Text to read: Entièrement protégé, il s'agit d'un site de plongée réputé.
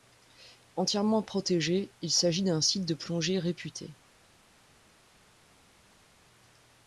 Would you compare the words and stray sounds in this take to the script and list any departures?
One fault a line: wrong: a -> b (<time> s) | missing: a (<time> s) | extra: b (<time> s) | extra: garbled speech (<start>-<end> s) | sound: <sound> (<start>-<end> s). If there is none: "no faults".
no faults